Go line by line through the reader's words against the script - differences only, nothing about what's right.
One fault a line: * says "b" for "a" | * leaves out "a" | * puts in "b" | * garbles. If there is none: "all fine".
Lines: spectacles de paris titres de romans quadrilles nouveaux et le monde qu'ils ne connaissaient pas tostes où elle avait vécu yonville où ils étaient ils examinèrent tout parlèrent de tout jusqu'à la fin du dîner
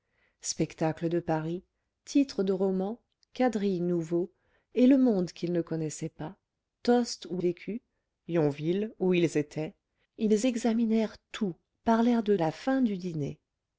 * leaves out "elle avait"
* leaves out "tout jusqu'à"